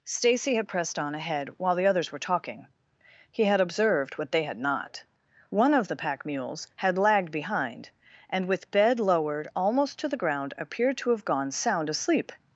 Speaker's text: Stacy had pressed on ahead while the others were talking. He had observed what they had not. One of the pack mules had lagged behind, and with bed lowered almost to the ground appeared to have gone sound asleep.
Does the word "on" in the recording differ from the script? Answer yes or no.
no